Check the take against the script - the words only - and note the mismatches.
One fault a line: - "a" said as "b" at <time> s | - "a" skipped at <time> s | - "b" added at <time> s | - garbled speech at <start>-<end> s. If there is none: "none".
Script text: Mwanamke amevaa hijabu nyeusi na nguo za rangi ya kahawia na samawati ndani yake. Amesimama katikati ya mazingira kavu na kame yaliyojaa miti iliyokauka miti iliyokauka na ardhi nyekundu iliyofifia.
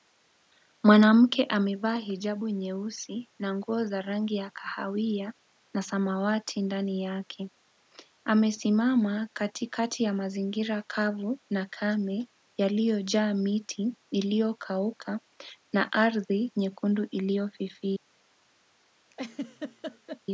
- "miti iliyokauka" skipped at 15.2 s